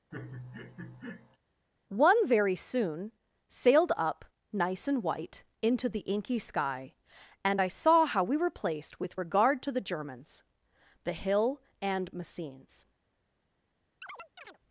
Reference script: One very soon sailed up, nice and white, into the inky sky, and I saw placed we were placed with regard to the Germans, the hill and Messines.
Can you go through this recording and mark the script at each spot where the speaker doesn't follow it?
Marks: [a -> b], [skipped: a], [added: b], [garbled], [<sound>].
[laugh] One very soon sailed up, nice and white, into the inky sky, and I saw [placed -> how] we were placed with regard to the Germans, the hill and Messines. [chirp]